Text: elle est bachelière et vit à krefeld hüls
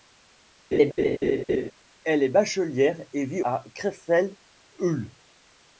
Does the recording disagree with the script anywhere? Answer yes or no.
no